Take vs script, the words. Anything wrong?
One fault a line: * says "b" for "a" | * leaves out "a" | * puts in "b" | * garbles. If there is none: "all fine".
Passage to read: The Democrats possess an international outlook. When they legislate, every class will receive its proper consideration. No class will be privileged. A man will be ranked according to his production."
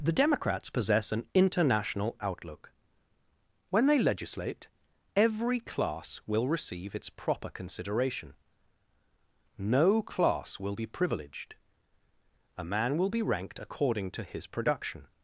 all fine